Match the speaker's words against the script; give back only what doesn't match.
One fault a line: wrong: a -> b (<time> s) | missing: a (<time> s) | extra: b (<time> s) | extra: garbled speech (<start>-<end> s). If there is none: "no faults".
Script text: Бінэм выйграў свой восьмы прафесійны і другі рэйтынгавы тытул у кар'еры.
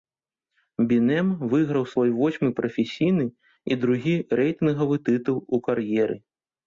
no faults